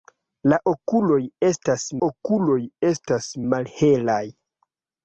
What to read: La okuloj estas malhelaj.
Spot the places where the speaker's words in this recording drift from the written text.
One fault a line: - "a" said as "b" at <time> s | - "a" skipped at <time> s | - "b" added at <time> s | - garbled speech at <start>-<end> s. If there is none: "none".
- "okuloj estas" added at 2.1 s